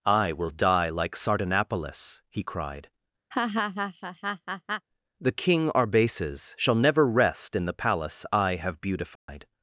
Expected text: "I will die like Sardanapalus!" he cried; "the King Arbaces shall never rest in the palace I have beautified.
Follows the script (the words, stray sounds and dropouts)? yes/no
no